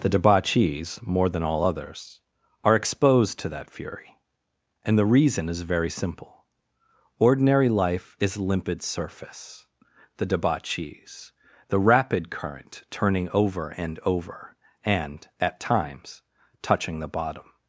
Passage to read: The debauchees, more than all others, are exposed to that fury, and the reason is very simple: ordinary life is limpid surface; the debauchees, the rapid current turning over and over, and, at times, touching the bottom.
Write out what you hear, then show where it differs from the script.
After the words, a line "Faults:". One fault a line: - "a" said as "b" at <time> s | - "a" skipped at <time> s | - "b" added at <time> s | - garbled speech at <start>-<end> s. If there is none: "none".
The debauchees, more than all others, are exposed to that fury, and the reason is very simple: ordinary life is limpid surface; the debauchees, the rapid current turning over and over, and, at times, touching the bottom.
Faults:
none